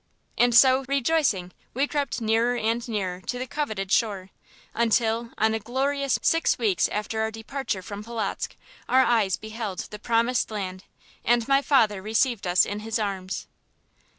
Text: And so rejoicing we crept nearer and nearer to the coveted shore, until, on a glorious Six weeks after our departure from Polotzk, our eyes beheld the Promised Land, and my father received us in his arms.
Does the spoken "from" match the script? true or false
true